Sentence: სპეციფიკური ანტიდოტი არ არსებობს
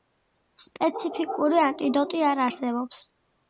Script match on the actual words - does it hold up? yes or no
yes